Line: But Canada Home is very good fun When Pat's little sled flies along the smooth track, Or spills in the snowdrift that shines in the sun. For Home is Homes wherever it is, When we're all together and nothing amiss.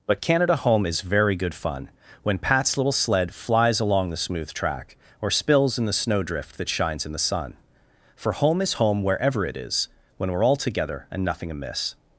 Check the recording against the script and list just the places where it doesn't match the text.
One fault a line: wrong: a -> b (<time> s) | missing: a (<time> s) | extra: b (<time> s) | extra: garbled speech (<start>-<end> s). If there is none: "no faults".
wrong: Homes -> Home (8.7 s)